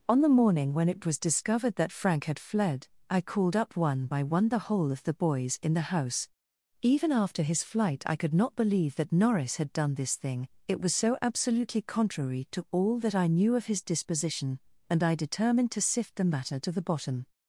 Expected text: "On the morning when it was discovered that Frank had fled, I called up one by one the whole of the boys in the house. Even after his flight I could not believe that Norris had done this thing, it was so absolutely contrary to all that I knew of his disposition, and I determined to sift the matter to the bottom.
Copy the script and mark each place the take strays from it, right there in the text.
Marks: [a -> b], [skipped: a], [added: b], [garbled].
"On the morning when it was discovered that Frank had fled, I called up one by one the whole of the boys in the house. Even after his flight I could not believe that Norris had done this thing, it was so absolutely contrary to all that I knew of his disposition, and I determined to sift the matter to the bottom.